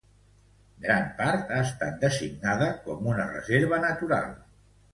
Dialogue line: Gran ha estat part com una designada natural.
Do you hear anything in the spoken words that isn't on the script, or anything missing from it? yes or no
yes